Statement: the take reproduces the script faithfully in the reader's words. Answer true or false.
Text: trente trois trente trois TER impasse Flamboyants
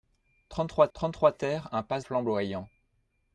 true